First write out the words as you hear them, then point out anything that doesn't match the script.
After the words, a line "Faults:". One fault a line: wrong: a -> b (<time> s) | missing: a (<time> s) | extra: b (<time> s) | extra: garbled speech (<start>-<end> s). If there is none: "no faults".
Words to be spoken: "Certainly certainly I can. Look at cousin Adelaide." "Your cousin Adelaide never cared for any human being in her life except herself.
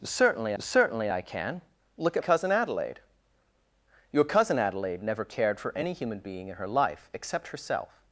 "Certainly certainly I can. Look at cousin Adelaide." "Your cousin Adelaide never cared for any human being in her life except herself.
Faults:
no faults